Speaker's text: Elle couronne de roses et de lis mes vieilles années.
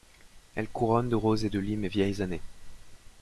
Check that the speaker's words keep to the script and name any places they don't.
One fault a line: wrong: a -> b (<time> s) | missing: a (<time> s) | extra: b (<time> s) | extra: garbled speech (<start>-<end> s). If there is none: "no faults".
no faults